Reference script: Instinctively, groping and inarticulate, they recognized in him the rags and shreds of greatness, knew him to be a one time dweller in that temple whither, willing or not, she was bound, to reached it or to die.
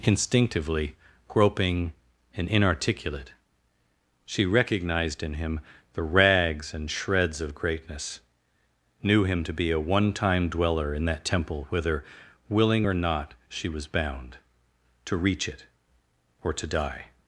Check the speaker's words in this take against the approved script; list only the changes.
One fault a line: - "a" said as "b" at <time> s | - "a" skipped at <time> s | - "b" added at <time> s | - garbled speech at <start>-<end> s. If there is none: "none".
- "they" said as "she" at 4.2 s
- "reached" said as "reach" at 15.2 s